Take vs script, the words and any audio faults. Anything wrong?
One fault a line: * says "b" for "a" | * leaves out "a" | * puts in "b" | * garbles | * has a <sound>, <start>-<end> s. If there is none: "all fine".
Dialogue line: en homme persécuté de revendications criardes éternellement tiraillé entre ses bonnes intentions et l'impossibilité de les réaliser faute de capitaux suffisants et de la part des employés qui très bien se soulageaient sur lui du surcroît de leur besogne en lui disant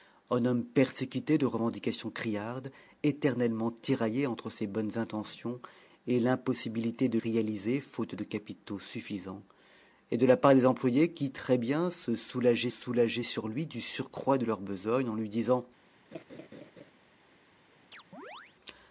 * leaves out "les"
* puts in "soulageaient"
* has a laugh, 16.1-16.9 s
* has a chirp, 17.9-18.6 s